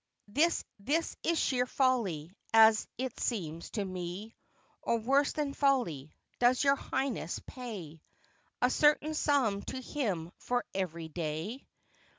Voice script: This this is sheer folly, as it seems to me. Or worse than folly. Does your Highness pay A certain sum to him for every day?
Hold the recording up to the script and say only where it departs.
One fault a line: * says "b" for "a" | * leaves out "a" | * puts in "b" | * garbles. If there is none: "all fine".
all fine